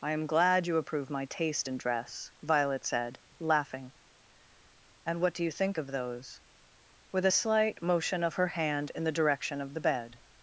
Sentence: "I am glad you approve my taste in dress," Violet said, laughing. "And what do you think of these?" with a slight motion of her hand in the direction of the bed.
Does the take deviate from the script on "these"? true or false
true